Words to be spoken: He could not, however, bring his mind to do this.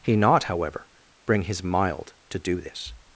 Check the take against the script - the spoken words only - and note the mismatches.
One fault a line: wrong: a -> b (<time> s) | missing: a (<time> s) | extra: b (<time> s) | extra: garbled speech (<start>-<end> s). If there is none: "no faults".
missing: could (0.1 s)
wrong: mind -> mild (1.6 s)